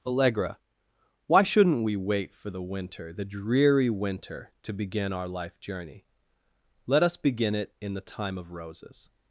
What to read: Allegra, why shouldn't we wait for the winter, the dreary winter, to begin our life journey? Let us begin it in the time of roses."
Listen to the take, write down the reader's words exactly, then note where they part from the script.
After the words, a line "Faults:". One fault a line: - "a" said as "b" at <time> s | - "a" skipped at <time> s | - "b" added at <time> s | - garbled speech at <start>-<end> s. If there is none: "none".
Allegra, why shouldn't we wait for the winter, the dreary winter, to begin our life journey? Let us begin it in the time of roses."
Faults:
none